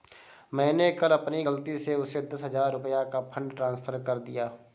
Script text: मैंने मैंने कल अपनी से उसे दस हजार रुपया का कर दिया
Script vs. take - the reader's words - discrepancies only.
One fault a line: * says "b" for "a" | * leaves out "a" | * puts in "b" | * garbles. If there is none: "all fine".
* leaves out "मैंने"
* puts in "गलती"
* puts in "फ़ंड ट्रांस्फर"